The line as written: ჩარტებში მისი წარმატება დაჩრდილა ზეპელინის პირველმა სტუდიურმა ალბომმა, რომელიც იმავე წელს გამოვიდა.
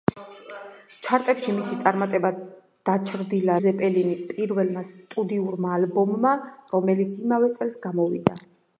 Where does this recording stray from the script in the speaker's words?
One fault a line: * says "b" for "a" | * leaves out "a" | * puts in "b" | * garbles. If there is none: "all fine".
all fine